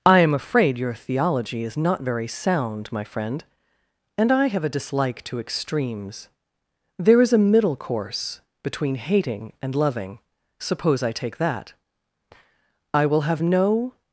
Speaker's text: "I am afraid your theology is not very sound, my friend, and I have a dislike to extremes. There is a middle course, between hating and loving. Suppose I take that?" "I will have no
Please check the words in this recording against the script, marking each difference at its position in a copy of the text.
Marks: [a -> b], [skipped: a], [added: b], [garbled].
"I am afraid your theology is not very sound, my friend, and I have a dislike to extremes. There is a middle course, between hating and loving. Suppose I take that?" "I will have no